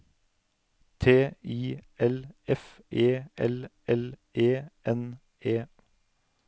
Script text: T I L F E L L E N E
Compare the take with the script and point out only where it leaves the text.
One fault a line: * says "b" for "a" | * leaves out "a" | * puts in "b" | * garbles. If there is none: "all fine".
all fine